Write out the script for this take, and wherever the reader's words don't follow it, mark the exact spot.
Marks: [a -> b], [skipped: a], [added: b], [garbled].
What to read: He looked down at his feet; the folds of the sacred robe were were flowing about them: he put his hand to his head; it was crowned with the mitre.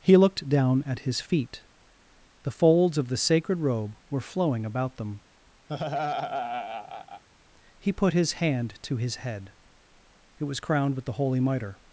He looked down at his feet; the folds of the sacred robe were [skipped: were] flowing about them: he put his hand to his head; it was crowned with the [added: holy] mitre.